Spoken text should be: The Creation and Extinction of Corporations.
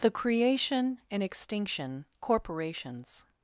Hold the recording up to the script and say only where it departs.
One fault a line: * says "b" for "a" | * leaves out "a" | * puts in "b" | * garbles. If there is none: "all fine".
* leaves out "of"